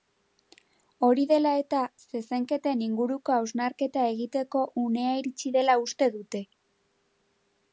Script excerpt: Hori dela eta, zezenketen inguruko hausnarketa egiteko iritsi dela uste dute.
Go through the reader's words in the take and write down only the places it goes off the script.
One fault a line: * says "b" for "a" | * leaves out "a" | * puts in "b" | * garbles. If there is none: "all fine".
* puts in "unea"